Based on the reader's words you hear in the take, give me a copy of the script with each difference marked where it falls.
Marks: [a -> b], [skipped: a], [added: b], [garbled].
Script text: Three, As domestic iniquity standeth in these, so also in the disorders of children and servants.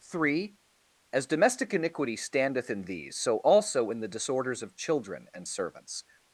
Three, As domestic iniquity standeth in these, so also in the disorders of children and servants.